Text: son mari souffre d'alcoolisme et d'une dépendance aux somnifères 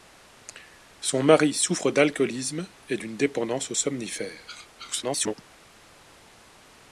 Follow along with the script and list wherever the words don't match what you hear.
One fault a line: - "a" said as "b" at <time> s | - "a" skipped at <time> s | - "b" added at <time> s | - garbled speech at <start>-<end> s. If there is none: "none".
- garbled speech at 4.8-5.3 s